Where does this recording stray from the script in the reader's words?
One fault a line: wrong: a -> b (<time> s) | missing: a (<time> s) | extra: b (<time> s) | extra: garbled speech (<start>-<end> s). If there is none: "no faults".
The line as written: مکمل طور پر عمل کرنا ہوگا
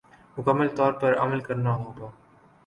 no faults